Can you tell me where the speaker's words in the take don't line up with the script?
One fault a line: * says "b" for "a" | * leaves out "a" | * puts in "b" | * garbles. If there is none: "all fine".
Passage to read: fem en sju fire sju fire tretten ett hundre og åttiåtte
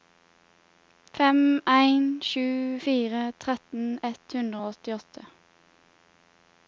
* leaves out "sju fire"